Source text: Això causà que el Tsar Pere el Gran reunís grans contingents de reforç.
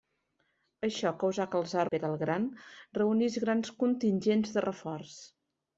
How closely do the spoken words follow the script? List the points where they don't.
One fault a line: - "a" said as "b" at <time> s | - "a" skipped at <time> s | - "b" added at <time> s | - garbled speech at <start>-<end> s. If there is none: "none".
none